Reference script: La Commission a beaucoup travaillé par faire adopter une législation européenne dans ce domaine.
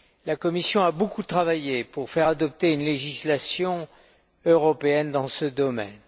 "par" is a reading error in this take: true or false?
true